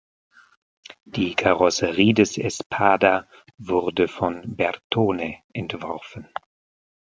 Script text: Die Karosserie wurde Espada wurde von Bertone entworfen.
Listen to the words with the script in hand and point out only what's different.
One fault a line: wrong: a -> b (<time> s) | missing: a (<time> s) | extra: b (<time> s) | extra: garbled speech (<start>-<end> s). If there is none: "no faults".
wrong: wurde -> des (2.1 s)